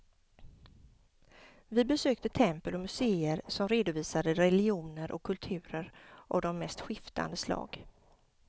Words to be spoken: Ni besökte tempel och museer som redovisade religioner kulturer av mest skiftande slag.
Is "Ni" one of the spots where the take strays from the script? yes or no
yes